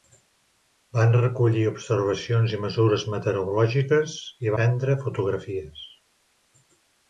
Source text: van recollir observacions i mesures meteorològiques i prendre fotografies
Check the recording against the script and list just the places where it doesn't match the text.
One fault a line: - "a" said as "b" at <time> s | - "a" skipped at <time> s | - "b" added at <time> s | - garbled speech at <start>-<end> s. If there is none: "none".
none